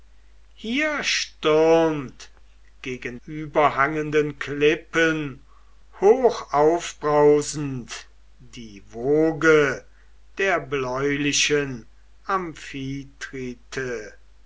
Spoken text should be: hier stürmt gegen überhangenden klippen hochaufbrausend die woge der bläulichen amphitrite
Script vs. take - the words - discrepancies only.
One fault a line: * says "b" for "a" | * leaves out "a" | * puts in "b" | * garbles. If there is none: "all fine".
all fine